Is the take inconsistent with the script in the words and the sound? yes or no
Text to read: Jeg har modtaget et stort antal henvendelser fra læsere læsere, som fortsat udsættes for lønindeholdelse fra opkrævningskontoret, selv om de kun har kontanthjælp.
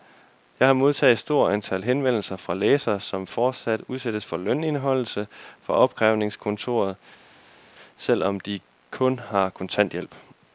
yes